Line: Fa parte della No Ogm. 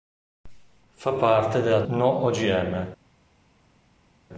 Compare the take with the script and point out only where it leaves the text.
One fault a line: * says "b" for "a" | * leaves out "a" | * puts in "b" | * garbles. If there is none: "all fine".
all fine